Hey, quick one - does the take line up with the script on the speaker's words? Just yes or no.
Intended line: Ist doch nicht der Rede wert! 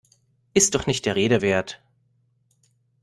yes